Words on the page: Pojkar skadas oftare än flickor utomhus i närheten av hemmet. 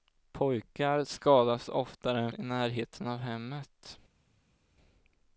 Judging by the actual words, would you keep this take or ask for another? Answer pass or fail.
fail